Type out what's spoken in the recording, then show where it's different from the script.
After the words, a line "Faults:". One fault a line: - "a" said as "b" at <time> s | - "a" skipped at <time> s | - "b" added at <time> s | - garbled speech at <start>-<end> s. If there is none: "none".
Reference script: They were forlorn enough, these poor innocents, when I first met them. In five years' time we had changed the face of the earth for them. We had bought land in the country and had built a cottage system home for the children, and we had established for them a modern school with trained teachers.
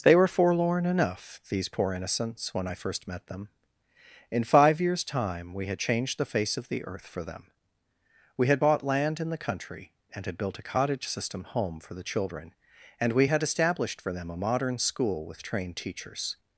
They were forlorn enough, these poor innocents, when I first met them. In five years' time we had changed the face of the earth for them. We had bought land in the country and had built a cottage system home for the children, and we had established for them a modern school with trained teachers.
Faults:
none